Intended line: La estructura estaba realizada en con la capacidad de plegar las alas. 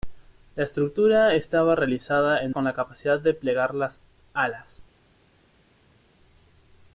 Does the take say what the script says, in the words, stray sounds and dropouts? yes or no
yes